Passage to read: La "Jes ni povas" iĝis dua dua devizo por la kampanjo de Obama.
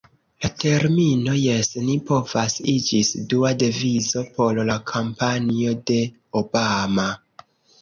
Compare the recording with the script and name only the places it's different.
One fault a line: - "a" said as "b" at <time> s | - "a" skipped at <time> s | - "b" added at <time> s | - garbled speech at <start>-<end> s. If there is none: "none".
- "termino" added at 0.6 s
- "dua" skipped at 3.5 s